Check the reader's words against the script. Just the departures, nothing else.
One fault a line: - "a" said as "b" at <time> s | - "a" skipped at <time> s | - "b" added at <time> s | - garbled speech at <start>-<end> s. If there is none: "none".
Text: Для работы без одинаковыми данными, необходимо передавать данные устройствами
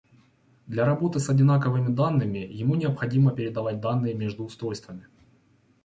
- "без" said as "с" at 1.2 s
- "ему" added at 2.4 s
- "между" added at 4.1 s